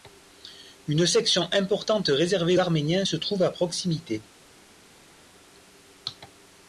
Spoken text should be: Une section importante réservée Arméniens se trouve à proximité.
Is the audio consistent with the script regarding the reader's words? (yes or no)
yes